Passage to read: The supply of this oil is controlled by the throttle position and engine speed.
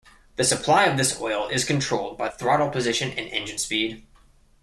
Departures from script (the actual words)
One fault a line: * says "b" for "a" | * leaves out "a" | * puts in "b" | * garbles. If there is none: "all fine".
* leaves out "the"